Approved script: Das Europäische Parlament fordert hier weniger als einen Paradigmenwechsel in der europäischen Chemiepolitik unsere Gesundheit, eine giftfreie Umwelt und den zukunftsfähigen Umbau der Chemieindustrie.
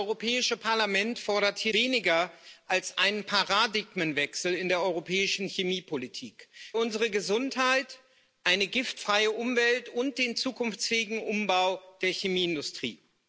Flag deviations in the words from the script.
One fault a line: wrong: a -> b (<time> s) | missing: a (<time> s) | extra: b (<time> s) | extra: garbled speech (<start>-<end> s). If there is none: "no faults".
no faults